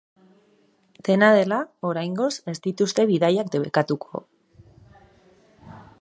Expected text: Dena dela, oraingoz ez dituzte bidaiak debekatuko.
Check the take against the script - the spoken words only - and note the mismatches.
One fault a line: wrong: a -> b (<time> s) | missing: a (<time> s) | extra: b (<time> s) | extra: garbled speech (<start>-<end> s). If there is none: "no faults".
no faults